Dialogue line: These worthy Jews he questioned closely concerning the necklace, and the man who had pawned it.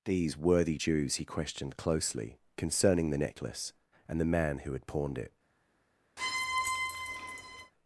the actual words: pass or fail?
pass